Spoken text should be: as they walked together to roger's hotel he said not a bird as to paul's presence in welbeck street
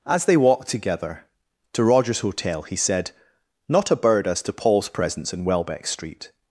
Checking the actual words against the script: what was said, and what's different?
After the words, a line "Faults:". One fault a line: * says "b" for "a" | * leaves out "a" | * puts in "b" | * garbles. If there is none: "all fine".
as they walked together to roger's hotel he said not a bird as to paul's presence in welbeck street
Faults:
all fine